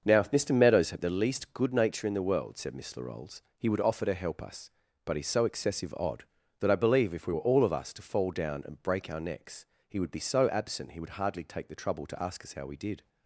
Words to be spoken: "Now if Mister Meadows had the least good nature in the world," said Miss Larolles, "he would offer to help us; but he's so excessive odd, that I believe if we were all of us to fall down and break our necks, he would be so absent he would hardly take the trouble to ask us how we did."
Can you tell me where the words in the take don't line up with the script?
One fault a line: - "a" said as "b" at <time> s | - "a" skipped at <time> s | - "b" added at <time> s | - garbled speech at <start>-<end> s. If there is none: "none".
none